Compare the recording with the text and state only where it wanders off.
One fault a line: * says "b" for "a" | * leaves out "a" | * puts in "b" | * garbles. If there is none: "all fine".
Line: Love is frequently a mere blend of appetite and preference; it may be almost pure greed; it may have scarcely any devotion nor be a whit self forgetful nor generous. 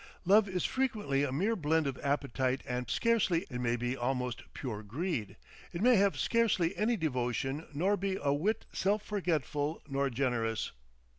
* says "scarcely" for "preference"